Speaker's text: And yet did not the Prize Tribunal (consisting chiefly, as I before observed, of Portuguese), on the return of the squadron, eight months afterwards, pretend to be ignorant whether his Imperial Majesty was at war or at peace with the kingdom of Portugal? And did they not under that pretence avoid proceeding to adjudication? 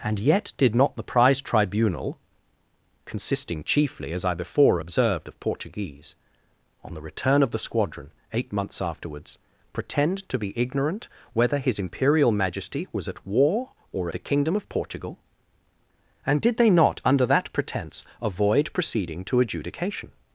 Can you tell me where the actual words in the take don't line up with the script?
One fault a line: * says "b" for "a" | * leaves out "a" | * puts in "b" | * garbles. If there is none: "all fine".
* leaves out "at peace with"